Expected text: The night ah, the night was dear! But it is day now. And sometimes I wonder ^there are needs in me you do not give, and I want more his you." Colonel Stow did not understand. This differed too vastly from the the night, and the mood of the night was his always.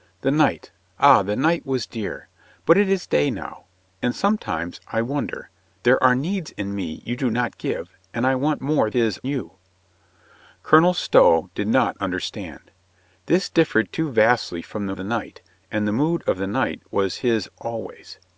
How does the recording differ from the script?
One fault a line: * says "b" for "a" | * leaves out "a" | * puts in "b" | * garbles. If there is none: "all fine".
all fine